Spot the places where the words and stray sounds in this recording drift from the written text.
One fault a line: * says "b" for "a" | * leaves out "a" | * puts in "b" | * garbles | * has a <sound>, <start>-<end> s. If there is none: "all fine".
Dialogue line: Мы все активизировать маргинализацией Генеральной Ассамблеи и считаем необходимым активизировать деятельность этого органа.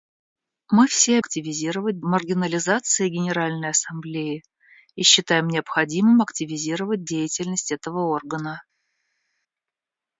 all fine